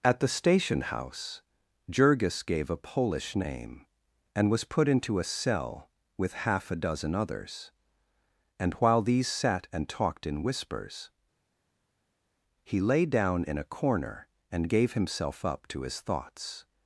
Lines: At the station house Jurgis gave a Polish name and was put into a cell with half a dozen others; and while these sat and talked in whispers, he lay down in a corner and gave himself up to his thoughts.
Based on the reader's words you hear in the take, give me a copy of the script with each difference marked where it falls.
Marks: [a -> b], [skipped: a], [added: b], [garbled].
At the station house Jurgis gave a Polish name and was put into a cell with half a dozen others; and while these sat and talked in whispers, he lay down in a corner and gave himself up to his thoughts.